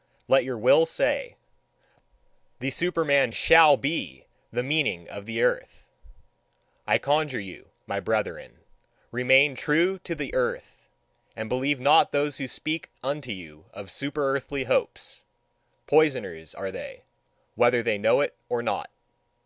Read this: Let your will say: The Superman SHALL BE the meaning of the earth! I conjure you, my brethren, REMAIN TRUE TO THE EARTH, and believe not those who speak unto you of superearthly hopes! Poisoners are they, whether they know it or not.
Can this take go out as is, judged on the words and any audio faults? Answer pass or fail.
pass